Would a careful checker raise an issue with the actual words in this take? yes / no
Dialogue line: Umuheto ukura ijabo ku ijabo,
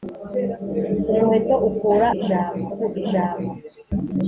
no